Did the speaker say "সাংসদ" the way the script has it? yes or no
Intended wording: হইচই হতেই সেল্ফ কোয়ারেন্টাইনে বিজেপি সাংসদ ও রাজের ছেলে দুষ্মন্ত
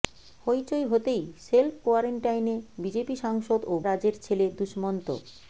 yes